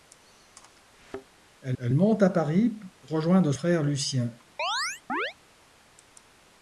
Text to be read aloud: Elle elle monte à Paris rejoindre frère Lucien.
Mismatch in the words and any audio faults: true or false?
true